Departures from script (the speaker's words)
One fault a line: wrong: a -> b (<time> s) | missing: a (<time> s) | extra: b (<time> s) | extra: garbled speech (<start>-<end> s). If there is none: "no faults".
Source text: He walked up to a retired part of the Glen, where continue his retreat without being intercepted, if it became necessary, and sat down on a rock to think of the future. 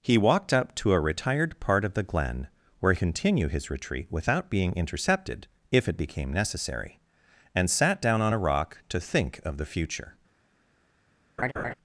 no faults